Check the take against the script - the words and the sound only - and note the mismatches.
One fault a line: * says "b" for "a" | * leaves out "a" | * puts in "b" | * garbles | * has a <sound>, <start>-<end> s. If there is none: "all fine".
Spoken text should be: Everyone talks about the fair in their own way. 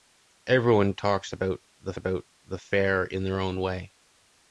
* puts in "about the"